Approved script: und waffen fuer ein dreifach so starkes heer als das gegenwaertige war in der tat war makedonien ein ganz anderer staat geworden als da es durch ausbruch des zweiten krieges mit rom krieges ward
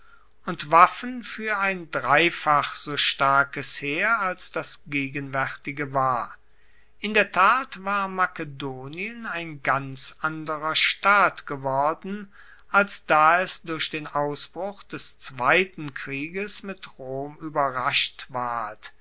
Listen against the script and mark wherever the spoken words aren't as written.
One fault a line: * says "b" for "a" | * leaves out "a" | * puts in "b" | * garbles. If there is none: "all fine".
* puts in "den"
* says "ueberrascht" for "krieges"